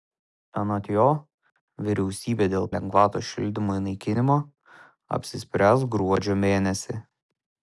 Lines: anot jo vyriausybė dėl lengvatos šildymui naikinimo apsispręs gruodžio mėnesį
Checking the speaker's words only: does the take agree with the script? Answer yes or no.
yes